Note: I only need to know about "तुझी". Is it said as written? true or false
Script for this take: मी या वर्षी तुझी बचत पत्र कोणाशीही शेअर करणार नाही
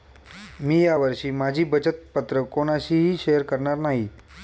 false